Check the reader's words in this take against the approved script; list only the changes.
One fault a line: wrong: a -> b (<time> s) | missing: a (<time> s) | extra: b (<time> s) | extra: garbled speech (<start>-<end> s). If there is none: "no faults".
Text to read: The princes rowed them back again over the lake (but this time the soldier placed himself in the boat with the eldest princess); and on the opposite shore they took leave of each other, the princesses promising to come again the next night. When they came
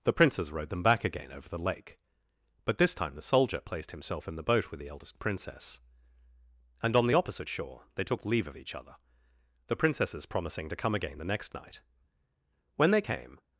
no faults